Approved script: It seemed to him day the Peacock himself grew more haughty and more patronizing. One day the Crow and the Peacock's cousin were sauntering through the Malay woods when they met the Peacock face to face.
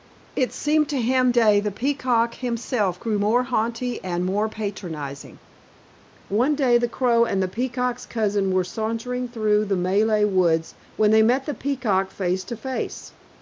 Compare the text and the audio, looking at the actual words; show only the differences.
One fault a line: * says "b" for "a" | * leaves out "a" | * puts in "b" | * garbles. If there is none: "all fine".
all fine